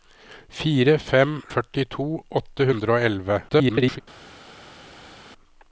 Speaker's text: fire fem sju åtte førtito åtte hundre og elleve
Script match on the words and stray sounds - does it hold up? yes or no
no